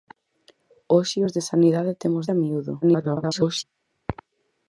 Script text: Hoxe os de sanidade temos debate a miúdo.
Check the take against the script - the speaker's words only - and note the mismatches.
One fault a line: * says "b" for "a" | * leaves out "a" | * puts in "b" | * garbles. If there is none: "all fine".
* leaves out "debate"
* garbles